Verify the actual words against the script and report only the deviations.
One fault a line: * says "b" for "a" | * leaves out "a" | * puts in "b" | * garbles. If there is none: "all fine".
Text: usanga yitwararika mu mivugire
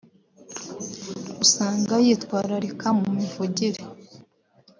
all fine